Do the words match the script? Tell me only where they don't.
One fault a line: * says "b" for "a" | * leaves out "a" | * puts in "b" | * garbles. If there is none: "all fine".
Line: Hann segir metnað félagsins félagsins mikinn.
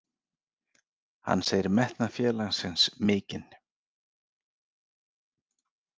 * leaves out "félagsins"